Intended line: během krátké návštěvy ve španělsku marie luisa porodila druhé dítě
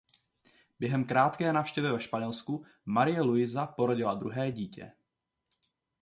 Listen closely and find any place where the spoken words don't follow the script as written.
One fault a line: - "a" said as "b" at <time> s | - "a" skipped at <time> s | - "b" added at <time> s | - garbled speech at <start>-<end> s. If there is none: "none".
none